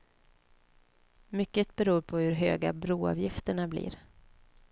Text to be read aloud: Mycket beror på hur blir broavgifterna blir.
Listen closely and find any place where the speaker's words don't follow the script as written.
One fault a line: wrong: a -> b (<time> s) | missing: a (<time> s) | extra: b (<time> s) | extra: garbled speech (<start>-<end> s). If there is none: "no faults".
wrong: blir -> höga (2.3 s)